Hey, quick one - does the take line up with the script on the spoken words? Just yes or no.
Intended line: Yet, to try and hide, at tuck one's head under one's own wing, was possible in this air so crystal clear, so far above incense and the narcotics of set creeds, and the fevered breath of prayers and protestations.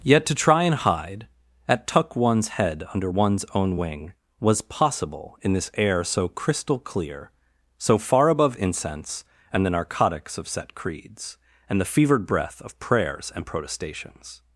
yes